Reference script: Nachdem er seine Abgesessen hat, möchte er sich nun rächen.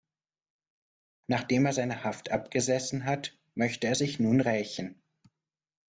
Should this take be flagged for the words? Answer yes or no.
yes